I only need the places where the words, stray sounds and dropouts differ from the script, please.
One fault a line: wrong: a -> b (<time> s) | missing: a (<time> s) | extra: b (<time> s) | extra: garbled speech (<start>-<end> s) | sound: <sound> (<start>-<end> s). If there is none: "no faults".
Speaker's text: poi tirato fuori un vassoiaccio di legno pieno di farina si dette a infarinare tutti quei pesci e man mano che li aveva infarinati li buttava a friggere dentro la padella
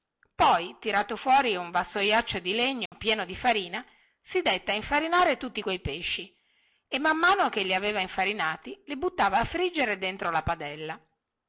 sound: dropout (2.9-2.9 s)